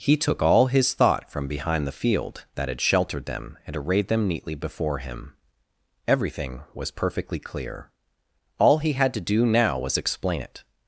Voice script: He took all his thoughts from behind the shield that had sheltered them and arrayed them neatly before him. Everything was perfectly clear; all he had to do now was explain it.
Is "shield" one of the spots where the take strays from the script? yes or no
yes